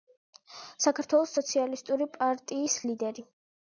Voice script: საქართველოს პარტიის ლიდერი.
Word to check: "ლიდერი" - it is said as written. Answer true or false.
true